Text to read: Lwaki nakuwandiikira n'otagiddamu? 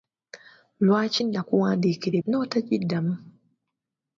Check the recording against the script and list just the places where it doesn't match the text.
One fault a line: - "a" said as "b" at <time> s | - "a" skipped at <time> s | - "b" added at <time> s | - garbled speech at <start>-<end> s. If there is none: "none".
none